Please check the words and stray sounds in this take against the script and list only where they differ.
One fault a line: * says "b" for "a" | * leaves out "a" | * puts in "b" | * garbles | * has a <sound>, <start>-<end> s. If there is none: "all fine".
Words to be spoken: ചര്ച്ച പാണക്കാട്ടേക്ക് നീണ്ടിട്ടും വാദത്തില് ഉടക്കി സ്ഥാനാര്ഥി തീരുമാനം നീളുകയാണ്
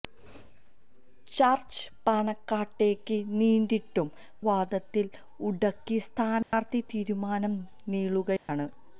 * has a dropout, 6.4-6.5 s
* has a dropout, 8.4-8.5 s